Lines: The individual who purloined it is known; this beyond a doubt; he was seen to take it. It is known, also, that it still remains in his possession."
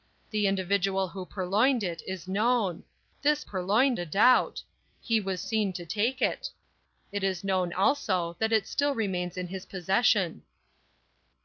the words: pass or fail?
fail